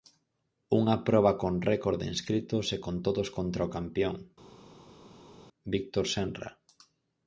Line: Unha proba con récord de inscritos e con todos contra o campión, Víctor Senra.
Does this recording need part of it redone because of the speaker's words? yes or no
no